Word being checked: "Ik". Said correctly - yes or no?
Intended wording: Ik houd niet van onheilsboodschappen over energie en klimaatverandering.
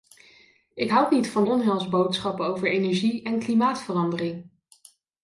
yes